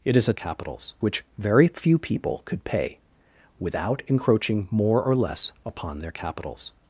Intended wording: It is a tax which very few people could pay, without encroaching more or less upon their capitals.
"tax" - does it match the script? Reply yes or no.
no